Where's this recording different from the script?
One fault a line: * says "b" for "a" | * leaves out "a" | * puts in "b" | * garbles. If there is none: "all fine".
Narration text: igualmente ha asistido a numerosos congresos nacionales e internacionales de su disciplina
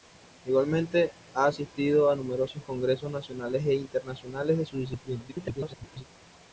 * garbles